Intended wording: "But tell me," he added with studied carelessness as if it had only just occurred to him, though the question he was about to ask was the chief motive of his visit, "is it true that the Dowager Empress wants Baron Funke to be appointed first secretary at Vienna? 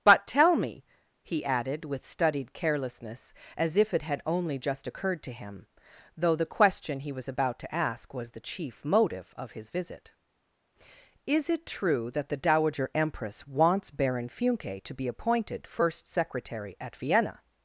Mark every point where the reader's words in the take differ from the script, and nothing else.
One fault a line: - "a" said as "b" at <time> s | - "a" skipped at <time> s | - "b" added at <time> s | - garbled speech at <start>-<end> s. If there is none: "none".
none